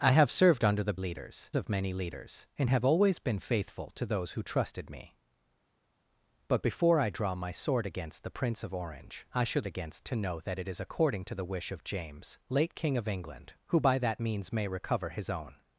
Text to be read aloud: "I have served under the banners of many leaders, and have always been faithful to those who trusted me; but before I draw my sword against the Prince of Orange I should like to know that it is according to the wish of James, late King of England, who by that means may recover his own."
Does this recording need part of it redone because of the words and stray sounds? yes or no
yes